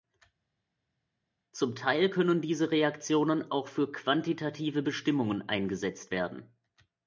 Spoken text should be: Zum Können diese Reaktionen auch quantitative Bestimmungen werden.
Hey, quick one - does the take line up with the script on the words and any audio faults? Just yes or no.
no